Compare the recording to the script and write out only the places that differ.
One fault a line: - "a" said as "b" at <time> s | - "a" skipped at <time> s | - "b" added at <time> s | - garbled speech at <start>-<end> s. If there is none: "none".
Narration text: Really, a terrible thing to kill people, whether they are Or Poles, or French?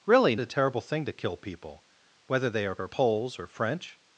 none